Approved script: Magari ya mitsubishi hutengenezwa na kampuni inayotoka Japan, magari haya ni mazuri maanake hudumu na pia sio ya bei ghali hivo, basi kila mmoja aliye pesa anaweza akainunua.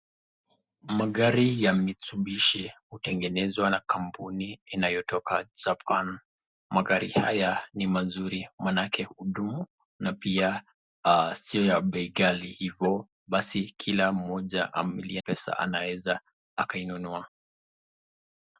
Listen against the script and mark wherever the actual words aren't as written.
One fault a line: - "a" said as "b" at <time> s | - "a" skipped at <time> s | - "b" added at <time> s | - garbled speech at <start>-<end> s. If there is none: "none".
none